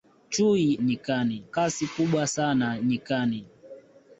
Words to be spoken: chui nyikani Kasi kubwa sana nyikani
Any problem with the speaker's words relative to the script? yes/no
no